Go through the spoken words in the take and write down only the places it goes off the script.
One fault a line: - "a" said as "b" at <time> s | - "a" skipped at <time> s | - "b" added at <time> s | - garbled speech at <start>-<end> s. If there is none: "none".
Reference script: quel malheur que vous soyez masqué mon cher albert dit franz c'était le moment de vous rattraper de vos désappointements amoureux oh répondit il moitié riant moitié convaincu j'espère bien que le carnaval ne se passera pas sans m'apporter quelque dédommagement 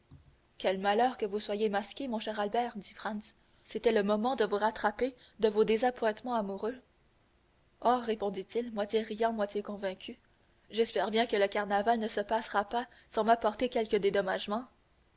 none